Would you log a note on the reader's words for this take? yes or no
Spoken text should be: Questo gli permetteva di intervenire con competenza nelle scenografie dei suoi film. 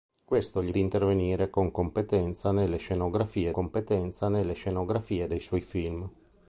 yes